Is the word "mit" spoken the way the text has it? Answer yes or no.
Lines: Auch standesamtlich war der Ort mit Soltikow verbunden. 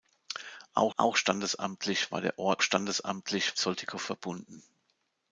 no